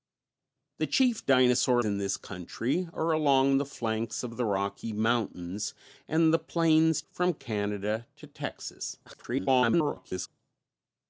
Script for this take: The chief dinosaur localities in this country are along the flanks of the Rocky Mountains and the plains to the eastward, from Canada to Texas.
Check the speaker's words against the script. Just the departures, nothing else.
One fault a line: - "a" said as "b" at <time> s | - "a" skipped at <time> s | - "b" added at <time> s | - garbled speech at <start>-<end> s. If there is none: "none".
- "localities" skipped at 1.9 s
- "to the eastward" skipped at 7.0 s
- garbled speech at 9.1-10.3 s